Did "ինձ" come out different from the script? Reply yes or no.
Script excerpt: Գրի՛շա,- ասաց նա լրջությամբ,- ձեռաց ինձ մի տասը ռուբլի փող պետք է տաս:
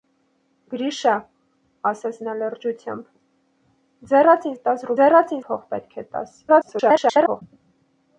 yes